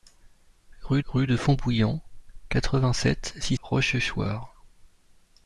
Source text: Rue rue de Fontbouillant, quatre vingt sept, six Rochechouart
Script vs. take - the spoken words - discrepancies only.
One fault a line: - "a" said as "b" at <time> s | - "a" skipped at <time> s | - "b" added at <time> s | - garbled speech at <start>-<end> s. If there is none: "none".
none